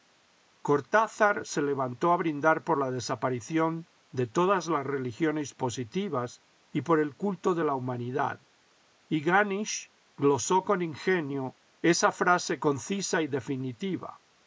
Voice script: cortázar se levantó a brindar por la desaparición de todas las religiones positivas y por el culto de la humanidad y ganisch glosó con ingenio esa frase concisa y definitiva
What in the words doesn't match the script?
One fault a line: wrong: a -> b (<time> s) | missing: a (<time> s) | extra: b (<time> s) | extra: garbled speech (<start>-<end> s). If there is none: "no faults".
no faults